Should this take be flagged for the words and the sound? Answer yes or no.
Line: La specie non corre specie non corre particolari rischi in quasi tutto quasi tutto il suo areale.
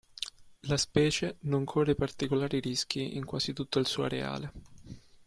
yes